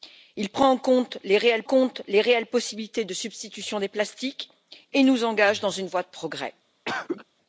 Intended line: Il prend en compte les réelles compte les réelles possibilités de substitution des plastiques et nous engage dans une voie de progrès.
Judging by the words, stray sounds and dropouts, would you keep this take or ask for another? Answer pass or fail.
fail